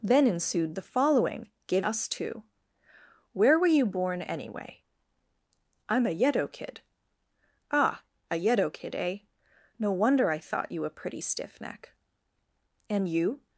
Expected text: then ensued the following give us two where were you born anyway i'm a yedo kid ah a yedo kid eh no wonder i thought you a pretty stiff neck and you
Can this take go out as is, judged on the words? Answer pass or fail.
pass